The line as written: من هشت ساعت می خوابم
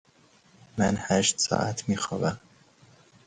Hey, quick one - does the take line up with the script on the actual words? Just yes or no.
yes